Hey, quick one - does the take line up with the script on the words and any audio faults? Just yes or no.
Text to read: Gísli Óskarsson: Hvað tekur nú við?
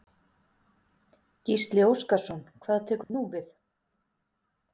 no